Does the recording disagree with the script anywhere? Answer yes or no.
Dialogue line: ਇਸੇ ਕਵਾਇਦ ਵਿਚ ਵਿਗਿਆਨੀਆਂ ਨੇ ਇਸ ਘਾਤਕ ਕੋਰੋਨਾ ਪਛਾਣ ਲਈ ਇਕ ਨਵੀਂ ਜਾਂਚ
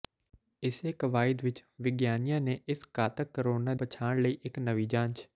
no